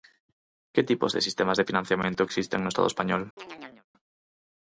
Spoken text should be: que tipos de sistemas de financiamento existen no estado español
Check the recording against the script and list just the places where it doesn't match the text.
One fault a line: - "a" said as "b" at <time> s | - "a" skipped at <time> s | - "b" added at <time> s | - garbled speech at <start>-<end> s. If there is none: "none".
none